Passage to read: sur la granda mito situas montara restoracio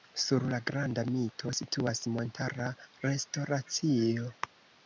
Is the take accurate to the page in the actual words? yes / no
yes